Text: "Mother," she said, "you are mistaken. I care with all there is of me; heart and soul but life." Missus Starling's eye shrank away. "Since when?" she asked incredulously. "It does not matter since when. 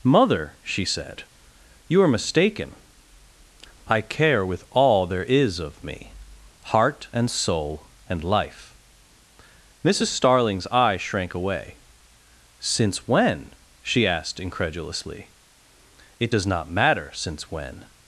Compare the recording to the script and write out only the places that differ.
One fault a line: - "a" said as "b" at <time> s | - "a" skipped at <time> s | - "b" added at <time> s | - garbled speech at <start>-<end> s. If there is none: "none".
- "but" said as "and" at 8.1 s